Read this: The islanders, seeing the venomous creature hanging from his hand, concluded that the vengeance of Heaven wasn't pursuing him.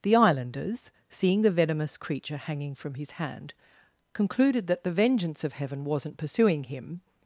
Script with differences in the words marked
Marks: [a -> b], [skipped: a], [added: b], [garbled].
The islanders, seeing the venomous creature hanging from his hand, concluded that the vengeance of Heaven wasn't pursuing him.